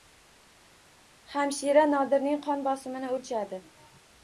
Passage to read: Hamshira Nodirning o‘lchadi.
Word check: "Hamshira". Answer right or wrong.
right